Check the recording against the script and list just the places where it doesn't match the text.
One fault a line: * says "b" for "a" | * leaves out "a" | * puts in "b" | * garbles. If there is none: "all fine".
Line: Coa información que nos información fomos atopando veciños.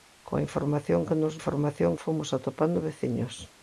all fine